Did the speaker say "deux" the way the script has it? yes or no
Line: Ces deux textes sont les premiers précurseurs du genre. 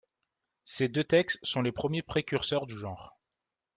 yes